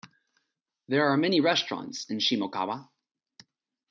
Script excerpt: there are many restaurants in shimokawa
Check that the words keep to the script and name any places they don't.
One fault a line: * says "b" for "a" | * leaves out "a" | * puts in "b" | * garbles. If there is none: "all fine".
all fine